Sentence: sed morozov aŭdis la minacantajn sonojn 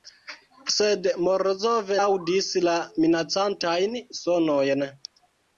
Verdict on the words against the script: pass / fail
pass